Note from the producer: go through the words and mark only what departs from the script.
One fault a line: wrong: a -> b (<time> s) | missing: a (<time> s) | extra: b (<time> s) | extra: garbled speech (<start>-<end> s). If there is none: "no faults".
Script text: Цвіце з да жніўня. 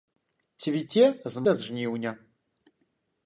no faults